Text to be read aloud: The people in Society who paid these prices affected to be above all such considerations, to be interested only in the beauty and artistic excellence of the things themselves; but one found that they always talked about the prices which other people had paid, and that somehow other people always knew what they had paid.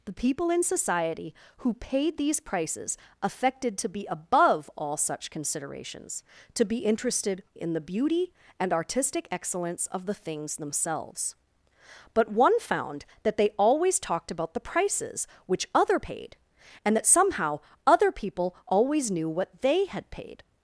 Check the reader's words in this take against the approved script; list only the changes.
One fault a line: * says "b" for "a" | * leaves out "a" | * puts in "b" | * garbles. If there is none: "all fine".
* leaves out "only"
* leaves out "people had"